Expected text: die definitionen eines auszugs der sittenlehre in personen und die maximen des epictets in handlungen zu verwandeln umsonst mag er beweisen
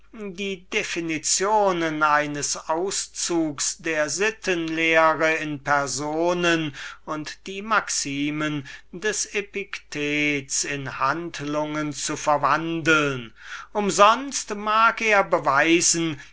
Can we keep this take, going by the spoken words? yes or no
yes